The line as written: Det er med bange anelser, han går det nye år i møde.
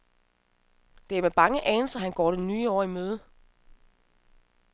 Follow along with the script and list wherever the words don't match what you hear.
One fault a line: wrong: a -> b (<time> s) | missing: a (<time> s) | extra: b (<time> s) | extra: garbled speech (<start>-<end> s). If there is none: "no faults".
no faults